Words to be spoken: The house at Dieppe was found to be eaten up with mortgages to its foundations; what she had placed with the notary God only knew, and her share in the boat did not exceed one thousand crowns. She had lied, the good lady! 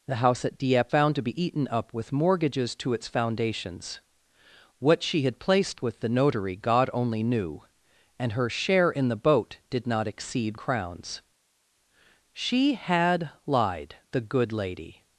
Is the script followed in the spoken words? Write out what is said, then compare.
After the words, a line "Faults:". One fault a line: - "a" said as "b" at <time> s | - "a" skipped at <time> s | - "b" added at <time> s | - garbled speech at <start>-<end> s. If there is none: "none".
The house at Dieppe found to be eaten up with mortgages to its foundations; what she had placed with the notary God only knew, and her share in the boat did not exceed crowns. She had lied, the good lady!
Faults:
- "was" skipped at 0.9 s
- "one thousand" skipped at 10.6 s